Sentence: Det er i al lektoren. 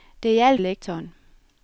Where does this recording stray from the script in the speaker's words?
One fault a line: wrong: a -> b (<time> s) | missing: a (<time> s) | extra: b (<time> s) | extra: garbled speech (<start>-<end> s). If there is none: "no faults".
no faults